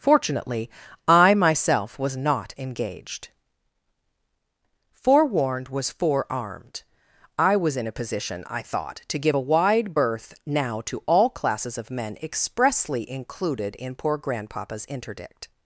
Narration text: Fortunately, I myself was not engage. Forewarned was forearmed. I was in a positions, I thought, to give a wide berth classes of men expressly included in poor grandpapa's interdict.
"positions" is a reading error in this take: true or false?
true